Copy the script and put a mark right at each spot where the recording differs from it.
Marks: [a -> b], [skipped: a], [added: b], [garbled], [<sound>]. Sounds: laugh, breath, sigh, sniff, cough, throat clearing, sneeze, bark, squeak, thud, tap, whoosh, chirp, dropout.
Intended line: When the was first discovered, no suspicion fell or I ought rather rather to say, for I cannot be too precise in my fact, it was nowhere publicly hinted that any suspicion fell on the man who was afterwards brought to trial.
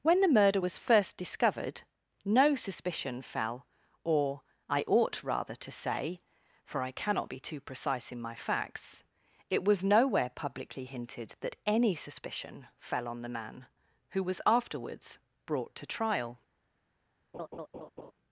When the [added: murder] was first discovered, no suspicion fell or I ought rather [skipped: rather] to say, for I cannot be too precise in my [fact, -> facts] it was nowhere publicly hinted that any suspicion fell on the man who was afterwards brought to trial. [laugh]